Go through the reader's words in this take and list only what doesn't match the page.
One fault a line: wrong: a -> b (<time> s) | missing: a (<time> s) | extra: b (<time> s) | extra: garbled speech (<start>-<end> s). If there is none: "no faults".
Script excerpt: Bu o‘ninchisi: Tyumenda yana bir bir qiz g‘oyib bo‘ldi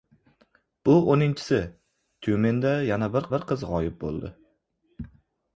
no faults